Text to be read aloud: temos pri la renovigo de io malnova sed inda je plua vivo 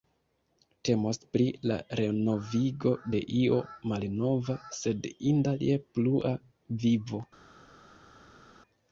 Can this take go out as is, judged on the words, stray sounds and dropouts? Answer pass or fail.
pass